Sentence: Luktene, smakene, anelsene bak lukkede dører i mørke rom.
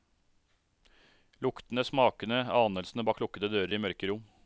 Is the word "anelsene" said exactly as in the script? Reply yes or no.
yes